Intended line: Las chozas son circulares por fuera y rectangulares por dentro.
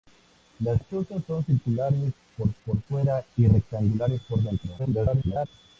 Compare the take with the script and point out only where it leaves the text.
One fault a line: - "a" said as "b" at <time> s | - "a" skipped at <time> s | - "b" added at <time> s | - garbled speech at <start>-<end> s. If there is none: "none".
- "por" added at 2.6 s
- garbled speech at 4.8-5.5 s